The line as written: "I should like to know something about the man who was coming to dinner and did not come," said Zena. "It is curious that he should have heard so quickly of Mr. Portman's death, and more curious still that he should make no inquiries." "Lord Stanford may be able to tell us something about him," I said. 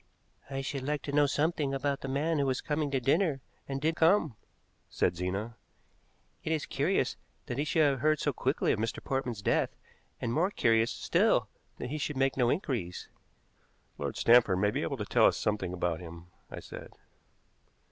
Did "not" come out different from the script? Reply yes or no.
yes